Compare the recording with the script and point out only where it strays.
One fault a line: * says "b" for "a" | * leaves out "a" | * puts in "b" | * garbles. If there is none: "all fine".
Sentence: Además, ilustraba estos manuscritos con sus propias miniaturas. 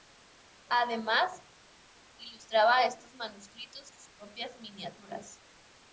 * leaves out "con"